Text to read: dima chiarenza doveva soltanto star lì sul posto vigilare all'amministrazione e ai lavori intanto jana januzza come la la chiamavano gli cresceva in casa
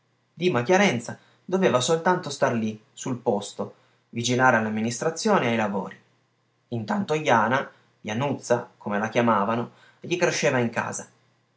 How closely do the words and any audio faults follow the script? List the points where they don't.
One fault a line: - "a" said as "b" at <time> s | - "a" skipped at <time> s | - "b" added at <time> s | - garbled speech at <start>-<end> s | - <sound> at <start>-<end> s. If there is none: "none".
- "la" skipped at 9.1 s